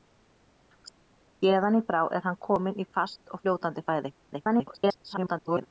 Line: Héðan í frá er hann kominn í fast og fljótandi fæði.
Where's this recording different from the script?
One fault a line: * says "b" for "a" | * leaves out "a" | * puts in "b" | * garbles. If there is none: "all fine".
* garbles